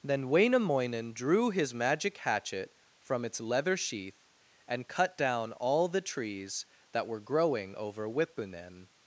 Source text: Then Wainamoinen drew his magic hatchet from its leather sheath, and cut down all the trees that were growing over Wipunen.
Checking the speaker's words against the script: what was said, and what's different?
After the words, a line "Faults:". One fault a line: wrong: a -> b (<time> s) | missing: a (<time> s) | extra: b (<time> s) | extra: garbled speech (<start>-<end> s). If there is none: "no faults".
Then Wainamoinen drew his magic hatchet from its leather sheath, and cut down all the trees that were growing over Wipunen.
Faults:
no faults